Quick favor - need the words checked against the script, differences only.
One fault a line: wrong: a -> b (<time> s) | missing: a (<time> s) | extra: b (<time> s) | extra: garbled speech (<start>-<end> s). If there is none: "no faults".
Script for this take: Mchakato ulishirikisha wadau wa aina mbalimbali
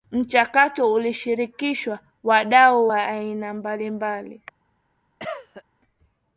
no faults